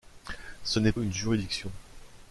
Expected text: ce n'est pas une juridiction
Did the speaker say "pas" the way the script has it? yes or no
no